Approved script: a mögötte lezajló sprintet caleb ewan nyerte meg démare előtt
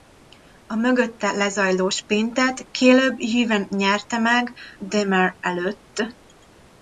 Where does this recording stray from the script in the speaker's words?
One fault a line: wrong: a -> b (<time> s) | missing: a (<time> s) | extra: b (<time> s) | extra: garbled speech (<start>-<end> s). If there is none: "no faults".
no faults